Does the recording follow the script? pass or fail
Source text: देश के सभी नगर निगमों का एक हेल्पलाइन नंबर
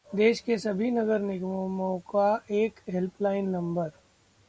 pass